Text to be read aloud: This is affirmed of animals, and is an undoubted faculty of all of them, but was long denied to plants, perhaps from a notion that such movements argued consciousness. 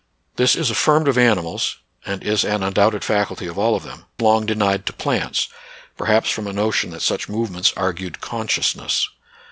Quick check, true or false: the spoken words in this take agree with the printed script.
false